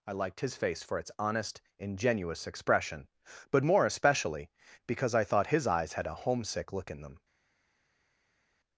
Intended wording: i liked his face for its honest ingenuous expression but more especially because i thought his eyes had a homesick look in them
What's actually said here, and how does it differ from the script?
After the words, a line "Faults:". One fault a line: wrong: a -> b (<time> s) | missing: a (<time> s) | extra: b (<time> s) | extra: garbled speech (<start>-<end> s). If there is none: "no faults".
i liked his face for its honest ingenuous expression but more especially because i thought his eyes had a homesick look in them
Faults:
no faults